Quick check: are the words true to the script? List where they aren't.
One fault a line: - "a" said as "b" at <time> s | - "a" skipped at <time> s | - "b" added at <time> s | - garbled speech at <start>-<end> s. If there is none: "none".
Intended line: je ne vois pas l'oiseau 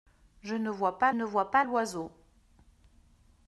- "ne vois pas" added at 1.1 s